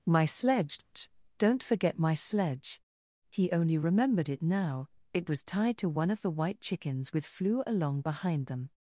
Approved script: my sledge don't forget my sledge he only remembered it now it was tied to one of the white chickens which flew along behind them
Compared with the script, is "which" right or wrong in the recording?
wrong